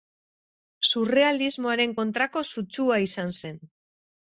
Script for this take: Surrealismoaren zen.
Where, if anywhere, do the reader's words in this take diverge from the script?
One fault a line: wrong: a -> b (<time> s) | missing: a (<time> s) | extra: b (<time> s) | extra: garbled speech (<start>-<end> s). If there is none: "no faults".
extra: kontrako sutsua izan (2.0 s)